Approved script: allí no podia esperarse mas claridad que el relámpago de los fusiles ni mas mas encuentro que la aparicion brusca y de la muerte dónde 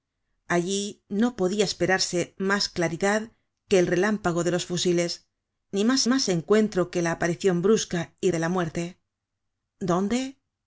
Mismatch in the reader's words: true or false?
false